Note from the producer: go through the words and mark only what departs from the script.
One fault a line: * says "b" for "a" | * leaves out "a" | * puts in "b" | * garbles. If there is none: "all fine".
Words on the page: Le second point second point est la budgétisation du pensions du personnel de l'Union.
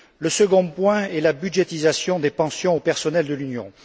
* leaves out "second point"
* says "des" for "du"